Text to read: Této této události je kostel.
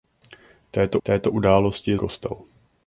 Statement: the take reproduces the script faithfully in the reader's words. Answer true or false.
true